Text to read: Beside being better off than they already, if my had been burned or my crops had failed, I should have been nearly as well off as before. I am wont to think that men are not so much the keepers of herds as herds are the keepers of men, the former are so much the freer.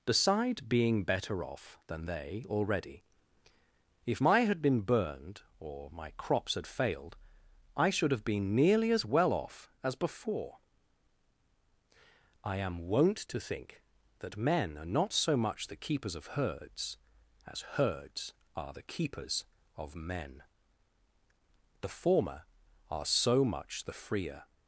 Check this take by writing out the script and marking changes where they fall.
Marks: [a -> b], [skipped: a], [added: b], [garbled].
Beside being better off than they already, if my had been burned or my crops had failed, I should have been nearly as well off as before. I am wont to think that men are not so much the keepers of herds as herds are the keepers of men, the former are so much the freer.